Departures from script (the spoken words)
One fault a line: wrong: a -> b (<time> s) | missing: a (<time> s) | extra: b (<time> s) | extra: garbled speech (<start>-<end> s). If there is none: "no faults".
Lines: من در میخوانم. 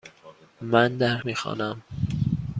no faults